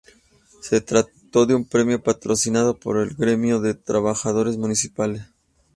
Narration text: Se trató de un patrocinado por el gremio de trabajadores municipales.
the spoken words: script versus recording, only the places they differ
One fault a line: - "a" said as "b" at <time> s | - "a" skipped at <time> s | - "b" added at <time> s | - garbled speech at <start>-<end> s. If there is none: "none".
- "premio" added at 1.6 s